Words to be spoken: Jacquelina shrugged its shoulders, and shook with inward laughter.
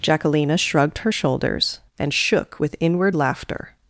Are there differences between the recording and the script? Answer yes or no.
yes